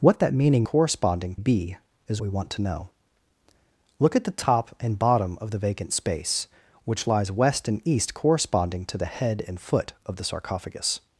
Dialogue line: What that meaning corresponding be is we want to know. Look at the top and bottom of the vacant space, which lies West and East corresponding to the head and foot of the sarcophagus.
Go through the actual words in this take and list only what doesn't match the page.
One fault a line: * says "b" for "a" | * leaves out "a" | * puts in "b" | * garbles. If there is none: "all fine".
all fine